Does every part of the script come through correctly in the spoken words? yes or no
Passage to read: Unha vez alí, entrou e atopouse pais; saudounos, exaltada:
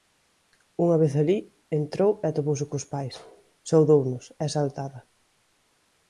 no